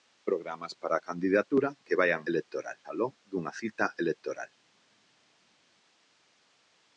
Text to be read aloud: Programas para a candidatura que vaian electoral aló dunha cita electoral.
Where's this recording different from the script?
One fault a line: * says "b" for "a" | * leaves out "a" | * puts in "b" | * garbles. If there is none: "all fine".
all fine